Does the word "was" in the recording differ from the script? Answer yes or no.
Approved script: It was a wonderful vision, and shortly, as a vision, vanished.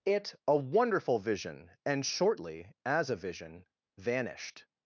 yes